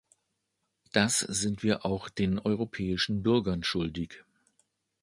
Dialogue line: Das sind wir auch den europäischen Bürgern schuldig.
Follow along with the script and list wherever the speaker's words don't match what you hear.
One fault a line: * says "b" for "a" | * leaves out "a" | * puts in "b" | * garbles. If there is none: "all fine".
all fine